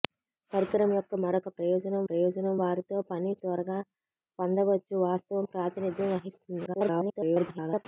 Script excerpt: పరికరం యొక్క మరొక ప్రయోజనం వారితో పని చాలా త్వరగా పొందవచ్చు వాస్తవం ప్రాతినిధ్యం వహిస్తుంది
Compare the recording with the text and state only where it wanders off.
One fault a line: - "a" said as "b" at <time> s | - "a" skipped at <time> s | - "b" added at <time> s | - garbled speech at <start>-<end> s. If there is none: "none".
- "ప్రయోజనం" added at 2.1 s
- "చాలా" skipped at 3.3 s
- garbled speech at 6.7-7.9 s